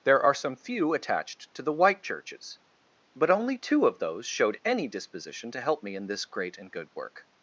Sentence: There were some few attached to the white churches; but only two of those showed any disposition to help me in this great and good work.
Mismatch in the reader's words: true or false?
true